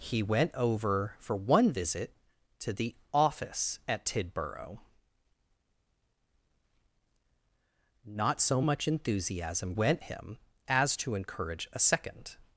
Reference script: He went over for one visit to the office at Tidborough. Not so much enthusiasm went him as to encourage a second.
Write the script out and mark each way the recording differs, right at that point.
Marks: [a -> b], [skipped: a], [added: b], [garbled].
He went over for one visit to the office at Tidborough. Not so much enthusiasm went him as to encourage a second.